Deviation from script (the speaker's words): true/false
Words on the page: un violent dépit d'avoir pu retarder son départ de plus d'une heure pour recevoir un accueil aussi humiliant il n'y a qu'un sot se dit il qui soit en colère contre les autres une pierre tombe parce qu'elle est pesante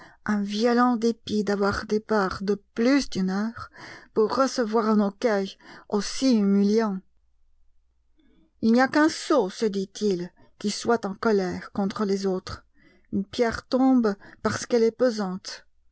true